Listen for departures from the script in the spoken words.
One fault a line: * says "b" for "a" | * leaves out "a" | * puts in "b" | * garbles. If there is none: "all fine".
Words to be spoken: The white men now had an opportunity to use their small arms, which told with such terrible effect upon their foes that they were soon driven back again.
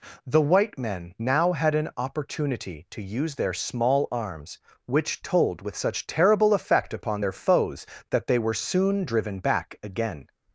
all fine